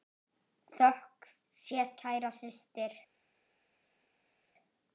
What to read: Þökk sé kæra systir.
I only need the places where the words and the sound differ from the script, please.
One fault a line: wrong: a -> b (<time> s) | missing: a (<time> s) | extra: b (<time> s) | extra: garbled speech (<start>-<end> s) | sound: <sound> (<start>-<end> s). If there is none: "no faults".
no faults